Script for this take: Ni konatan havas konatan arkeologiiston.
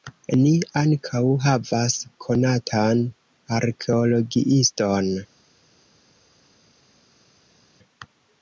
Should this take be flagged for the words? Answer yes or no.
yes